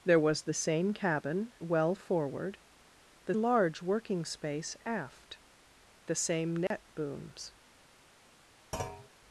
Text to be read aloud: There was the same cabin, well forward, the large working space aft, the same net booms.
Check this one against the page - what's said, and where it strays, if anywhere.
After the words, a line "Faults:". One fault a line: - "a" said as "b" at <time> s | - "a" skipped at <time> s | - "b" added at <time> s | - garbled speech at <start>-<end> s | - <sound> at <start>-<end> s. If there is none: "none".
There was the same cabin, well forward, the large working space aft, the same net booms.
Faults:
- dropout at 6.7-6.7 s
- thud at 8.7-9.1 s